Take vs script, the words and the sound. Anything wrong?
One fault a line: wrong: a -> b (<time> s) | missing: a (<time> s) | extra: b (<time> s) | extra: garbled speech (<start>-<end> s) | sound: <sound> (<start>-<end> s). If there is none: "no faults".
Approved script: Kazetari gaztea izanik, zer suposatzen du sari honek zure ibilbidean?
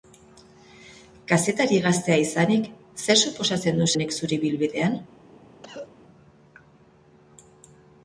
missing: sari (3.9 s)
sound: cough (5.6-5.9 s)